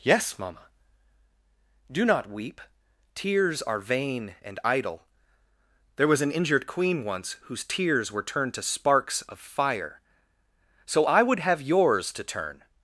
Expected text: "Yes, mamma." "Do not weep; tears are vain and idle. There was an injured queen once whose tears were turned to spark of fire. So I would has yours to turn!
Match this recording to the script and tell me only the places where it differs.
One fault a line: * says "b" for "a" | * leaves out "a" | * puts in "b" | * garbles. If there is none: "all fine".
* says "sparks" for "spark"
* says "have" for "has"